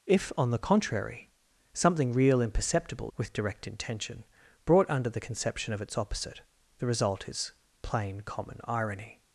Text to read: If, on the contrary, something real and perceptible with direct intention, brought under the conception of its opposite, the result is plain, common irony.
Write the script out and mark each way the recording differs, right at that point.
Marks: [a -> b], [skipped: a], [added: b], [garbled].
If, on the contrary, something real and perceptible with direct intention, brought under the conception of its opposite, the result is plain, common irony.